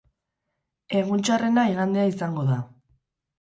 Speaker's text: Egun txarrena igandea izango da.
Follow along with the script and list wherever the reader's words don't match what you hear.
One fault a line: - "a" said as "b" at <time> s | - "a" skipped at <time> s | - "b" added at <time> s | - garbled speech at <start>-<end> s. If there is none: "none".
none